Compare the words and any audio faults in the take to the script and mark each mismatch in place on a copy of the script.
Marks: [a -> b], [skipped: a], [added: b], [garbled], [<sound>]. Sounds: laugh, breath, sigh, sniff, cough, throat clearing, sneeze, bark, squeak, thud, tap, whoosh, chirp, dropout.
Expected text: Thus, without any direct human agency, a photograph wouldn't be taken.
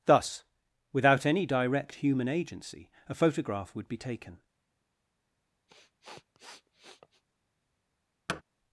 Thus, without any direct human agency, a photograph [wouldn't -> would] be taken. [sniff] [thud]